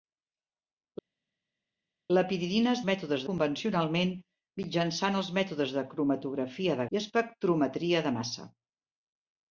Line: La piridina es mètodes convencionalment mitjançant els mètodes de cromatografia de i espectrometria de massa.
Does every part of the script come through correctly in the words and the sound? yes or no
yes